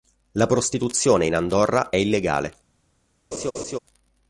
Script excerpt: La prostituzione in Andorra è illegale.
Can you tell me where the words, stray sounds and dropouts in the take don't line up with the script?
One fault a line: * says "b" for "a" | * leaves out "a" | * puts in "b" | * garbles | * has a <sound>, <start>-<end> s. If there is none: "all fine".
* has a laugh, 3.3-3.8 s